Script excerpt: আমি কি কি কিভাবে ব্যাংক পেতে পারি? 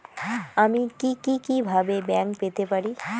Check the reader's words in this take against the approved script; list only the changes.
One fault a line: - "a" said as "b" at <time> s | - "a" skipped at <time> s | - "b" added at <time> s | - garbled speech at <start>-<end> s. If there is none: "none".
none